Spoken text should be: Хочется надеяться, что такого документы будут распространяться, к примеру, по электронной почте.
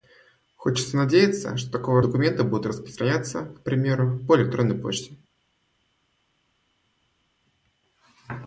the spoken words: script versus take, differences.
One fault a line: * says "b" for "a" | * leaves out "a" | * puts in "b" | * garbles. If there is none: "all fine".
all fine